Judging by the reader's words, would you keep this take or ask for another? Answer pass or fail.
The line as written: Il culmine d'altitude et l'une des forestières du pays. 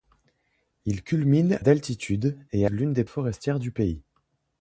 pass